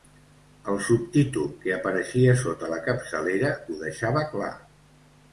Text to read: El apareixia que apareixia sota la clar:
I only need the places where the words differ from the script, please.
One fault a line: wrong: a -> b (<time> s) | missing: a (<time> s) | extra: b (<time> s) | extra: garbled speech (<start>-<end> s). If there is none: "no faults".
wrong: apareixia -> subtítol (0.8 s)
extra: capçalera ho deixava (2.9 s)